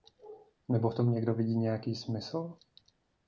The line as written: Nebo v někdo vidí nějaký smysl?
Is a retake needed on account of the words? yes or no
yes